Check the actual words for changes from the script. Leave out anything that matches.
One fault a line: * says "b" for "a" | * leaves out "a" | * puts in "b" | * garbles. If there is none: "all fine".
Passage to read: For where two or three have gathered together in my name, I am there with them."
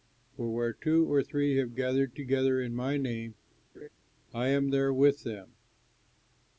all fine